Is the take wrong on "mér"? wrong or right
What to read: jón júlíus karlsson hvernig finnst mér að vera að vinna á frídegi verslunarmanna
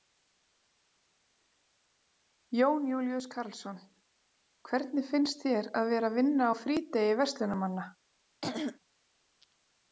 wrong